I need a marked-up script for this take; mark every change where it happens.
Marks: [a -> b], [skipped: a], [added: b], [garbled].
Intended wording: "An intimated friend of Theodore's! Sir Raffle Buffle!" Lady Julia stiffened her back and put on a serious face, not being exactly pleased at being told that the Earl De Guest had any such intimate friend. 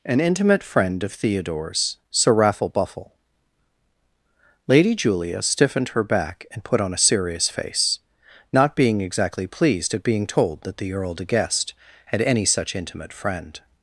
"An [intimated -> intimate] friend of Theodore's! Sir Raffle Buffle!" Lady Julia stiffened her back and put on a serious face, not being exactly pleased at being told that the Earl De Guest had any such intimate friend.